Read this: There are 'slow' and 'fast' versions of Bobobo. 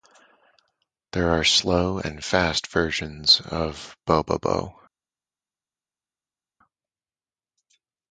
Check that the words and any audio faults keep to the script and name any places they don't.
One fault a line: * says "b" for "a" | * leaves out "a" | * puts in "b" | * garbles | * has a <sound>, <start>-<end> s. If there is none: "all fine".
all fine